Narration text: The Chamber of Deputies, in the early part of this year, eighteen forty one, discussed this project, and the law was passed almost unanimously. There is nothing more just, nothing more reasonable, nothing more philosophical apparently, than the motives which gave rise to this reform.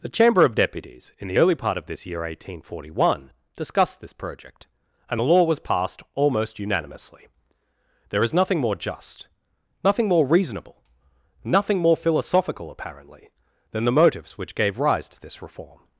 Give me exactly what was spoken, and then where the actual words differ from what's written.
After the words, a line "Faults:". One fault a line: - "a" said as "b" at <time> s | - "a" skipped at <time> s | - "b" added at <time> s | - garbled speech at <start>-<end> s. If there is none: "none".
The Chamber of Deputies, in the early part of this year, eighteen forty one, discussed this project, and the law was passed almost unanimously. There is nothing more just, nothing more reasonable, nothing more philosophical apparently, than the motives which gave rise to this reform.
Faults:
none